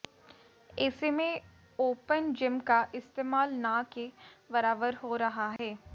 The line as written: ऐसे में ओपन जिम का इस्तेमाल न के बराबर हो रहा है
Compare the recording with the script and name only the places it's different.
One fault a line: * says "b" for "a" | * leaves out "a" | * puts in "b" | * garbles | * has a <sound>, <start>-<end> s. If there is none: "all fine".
* has a dropout, 5.6-5.6 s